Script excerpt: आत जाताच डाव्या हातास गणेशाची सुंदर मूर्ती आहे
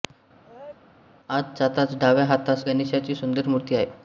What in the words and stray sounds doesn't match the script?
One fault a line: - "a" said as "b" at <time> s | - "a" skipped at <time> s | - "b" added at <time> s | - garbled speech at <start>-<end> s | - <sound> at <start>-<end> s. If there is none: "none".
- sneeze at 0.4-0.8 s